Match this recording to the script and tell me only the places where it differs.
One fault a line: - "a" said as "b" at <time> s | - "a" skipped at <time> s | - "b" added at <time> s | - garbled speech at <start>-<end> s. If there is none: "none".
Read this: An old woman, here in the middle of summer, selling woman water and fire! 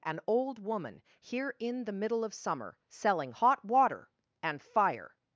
- "woman" said as "hot" at 3.3 s